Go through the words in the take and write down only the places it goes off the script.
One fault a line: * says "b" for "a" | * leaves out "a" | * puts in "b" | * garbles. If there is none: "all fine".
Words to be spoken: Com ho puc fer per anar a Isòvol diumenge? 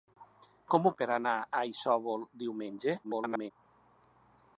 * leaves out "puc fer"
* garbles